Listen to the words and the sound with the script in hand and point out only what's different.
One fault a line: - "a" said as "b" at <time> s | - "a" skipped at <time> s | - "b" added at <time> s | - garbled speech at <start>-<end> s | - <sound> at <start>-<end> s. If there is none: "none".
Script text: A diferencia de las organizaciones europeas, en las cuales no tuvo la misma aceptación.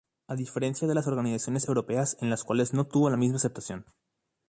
none